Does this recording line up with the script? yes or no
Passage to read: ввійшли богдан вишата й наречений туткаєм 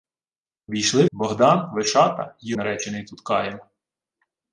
yes